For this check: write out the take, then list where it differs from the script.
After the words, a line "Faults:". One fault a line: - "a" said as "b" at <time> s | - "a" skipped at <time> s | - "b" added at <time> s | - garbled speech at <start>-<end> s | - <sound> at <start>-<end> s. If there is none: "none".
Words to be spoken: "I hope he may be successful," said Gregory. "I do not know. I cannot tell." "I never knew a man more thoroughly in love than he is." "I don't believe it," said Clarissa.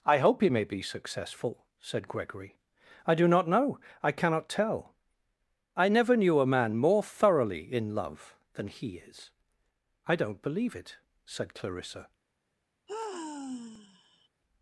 "I hope he may be successful," said Gregory. "I do not know. I cannot tell." "I never knew a man more thoroughly in love than he is." "I don't believe it," said Clarissa.
Faults:
- sigh at 12.9-14.3 s